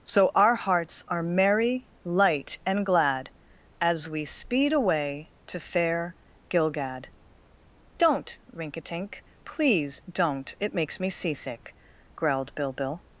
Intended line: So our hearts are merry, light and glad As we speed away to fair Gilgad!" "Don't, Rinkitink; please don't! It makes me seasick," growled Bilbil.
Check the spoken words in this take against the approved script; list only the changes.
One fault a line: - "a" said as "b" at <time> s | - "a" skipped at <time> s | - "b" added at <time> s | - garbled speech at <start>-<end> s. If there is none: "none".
none